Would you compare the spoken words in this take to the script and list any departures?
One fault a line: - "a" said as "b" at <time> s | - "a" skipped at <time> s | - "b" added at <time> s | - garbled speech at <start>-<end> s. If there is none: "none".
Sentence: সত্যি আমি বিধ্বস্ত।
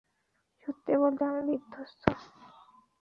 - "বলতে" added at 1.0 s